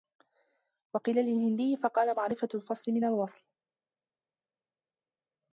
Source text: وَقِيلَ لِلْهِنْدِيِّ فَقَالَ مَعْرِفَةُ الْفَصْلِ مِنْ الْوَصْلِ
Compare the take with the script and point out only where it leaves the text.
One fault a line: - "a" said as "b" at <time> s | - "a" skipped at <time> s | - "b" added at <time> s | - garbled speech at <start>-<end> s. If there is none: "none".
none